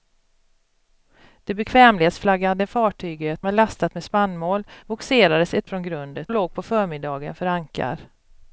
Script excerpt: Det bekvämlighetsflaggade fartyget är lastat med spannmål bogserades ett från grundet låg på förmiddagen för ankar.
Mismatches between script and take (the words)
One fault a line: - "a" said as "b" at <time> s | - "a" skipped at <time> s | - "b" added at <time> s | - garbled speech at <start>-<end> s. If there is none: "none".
none